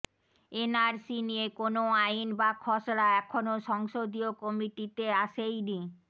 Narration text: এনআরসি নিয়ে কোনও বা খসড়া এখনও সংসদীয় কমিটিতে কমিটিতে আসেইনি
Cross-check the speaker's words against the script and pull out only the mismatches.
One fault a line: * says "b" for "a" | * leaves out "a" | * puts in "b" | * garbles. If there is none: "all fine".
* puts in "আইন"
* leaves out "কমিটিতে"